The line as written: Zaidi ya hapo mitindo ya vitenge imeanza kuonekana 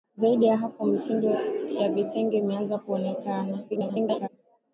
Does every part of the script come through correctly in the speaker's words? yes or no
no